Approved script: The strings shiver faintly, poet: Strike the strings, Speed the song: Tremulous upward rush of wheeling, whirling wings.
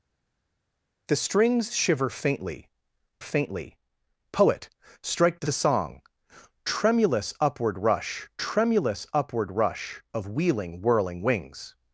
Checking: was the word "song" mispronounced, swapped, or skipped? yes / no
yes